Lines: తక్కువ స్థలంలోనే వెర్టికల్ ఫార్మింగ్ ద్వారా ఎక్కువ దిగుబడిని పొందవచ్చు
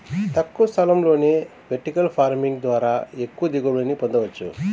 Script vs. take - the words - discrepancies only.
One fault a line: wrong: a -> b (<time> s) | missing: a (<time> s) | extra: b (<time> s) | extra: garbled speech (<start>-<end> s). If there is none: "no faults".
no faults